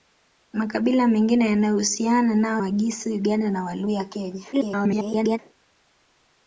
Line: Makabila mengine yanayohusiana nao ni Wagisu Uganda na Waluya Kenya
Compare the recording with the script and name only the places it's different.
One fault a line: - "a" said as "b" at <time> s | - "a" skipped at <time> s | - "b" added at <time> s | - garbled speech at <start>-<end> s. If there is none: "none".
- "ni" skipped at 2.6 s
- garbled speech at 4.5-5.4 s